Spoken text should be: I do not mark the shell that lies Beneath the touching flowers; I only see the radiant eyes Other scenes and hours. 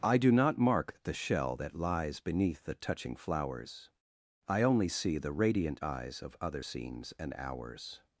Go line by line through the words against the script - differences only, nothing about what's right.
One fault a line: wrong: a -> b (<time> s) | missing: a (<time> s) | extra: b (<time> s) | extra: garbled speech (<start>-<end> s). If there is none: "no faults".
extra: Of (6.2 s)